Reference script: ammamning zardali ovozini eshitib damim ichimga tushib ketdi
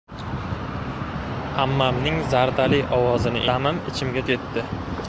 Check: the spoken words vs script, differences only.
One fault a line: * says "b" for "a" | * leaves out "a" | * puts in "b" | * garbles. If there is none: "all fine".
* leaves out "eshitib"
* leaves out "tushib"